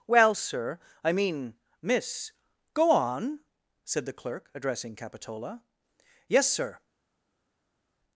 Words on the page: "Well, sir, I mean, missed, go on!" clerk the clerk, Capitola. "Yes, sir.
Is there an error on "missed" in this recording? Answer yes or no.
yes